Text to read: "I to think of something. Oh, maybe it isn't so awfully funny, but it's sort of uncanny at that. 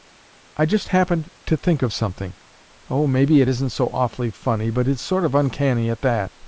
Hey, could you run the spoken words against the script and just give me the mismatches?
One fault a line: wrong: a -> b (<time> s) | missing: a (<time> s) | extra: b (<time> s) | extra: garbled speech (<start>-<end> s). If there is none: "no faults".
extra: just happened (0.7 s)